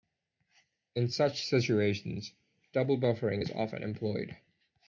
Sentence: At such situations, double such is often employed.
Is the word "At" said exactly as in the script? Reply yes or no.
no